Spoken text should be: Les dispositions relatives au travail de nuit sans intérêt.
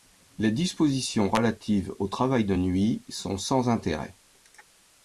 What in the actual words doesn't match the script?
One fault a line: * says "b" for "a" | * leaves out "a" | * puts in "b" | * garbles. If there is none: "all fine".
* puts in "sont"